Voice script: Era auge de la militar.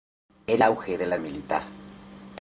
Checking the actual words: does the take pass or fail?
pass